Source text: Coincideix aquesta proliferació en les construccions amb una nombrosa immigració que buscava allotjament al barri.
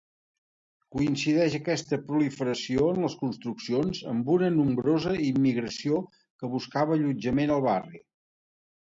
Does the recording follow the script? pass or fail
pass